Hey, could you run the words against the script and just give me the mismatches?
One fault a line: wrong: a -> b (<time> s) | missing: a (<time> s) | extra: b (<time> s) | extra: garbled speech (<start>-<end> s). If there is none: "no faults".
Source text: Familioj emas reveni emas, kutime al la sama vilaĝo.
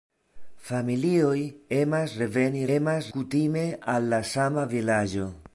no faults